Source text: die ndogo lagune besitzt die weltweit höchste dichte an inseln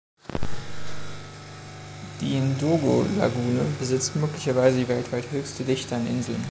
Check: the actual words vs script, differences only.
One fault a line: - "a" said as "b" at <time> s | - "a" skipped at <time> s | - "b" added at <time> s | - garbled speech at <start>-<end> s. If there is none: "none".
- "möglicherweise" added at 4.2 s